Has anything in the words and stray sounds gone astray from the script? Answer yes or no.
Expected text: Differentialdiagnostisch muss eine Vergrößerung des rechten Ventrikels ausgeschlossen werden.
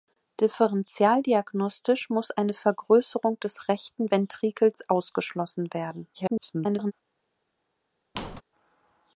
yes